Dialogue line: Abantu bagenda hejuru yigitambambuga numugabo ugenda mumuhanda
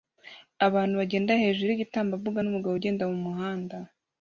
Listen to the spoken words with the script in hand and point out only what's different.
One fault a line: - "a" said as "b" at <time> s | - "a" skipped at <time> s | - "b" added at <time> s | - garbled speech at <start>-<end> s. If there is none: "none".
none